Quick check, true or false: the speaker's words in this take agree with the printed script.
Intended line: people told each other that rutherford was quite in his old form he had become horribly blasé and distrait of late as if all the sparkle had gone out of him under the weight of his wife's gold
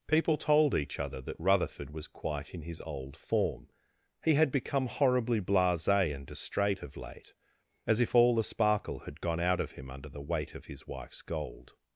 true